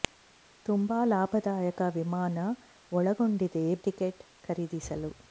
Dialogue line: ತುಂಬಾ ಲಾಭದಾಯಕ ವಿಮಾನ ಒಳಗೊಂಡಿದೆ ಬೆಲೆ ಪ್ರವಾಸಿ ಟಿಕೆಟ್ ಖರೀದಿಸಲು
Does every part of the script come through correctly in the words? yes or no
no